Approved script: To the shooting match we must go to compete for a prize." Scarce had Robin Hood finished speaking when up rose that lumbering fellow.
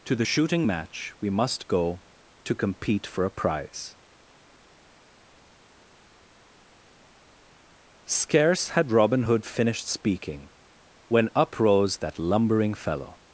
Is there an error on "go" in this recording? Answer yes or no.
no